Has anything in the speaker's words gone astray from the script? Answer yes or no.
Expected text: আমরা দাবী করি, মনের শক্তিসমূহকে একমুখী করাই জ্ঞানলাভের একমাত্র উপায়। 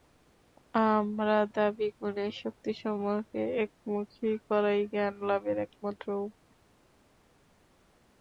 yes